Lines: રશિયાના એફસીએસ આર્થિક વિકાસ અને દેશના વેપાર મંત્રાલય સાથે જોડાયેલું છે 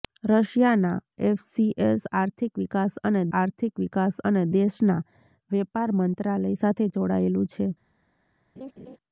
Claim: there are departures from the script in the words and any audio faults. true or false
true